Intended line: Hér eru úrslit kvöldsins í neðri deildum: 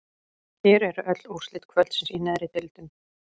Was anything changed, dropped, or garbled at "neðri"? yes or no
no